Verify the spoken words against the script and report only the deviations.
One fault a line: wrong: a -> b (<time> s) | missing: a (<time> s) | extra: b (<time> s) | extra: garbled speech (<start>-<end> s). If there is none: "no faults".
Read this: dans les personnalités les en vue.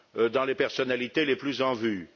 extra: plus (1.3 s)